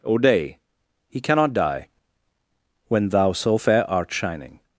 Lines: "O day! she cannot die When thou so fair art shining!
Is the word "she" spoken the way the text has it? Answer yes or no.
no